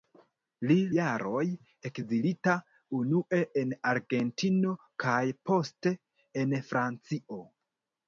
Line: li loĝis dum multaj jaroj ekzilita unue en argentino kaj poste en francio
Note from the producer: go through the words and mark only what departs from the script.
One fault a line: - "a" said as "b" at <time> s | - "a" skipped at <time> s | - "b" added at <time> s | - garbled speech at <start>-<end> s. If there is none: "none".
- "loĝis dum multaj" skipped at 0.8 s